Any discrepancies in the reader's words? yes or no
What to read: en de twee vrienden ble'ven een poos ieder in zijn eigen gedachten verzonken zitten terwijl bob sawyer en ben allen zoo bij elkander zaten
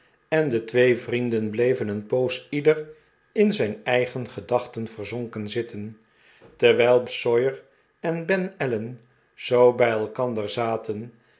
yes